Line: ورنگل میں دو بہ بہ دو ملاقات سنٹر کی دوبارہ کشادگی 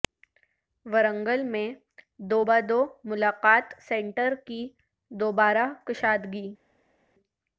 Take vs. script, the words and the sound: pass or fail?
fail